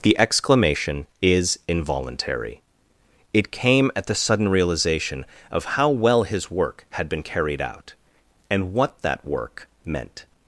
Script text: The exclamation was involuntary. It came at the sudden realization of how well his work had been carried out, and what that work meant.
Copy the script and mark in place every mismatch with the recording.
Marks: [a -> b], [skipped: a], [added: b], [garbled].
The exclamation [was -> is] involuntary. It came at the sudden realization of how well his work had been carried out, and what that work meant.